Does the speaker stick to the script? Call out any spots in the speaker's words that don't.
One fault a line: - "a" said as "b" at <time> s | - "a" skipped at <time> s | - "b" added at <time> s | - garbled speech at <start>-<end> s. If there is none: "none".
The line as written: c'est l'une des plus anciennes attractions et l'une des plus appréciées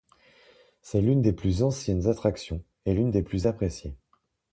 none